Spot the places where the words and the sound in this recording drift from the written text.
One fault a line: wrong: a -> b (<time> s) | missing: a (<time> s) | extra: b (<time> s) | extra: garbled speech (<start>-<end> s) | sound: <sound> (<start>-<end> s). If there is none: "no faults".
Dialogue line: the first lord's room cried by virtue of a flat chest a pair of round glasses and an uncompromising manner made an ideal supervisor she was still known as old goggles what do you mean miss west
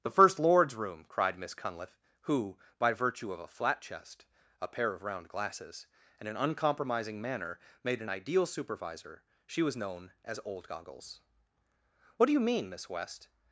extra: miss cunliffe who (1.4 s)
missing: still (9.8 s)